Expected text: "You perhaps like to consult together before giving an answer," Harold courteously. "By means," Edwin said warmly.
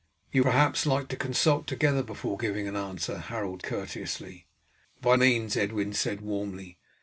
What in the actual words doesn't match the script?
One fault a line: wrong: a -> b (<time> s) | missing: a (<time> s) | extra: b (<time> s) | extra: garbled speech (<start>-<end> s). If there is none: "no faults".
no faults